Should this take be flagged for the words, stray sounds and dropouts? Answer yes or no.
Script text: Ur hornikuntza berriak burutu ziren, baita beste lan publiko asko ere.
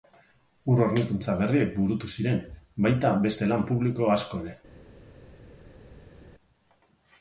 no